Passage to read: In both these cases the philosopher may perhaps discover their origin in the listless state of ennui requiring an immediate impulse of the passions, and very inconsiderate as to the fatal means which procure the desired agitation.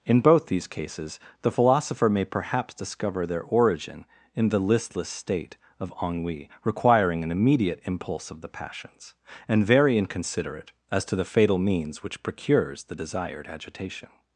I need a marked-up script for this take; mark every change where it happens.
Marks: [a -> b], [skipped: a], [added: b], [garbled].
In both these cases the philosopher may perhaps discover their origin in the listless state of ennui requiring an immediate impulse of the passions, and very inconsiderate as to the fatal means which [procure -> procures] the desired agitation.